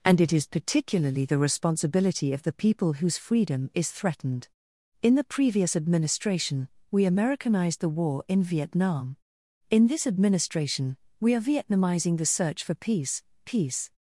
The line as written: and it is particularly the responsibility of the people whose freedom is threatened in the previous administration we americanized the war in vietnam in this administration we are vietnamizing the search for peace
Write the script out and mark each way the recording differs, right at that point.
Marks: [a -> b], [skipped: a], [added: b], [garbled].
and it is particularly the responsibility of the people whose freedom is threatened in the previous administration we americanized the war in vietnam in this administration we are vietnamizing the search for peace [added: peace]